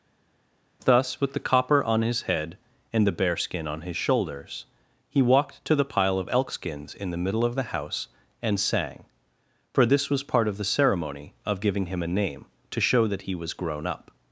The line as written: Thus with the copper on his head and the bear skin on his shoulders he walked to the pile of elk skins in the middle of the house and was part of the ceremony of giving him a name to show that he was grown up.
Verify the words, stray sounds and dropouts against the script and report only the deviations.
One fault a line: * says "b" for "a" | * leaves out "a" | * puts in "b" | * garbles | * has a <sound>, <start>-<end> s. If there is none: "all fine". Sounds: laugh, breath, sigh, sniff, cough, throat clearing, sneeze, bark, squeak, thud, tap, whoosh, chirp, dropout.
* puts in "sang for this"